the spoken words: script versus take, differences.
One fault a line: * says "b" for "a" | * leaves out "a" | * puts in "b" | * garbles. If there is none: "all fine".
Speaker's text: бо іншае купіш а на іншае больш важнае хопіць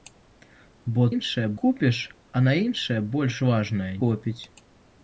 all fine